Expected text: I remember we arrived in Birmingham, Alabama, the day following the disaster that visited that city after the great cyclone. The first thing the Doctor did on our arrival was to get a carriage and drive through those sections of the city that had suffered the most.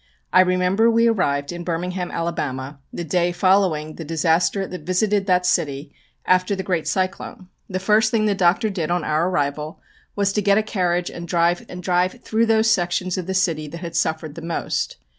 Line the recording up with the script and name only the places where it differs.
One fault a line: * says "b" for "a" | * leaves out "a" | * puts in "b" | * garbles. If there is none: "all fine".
* puts in "and drive"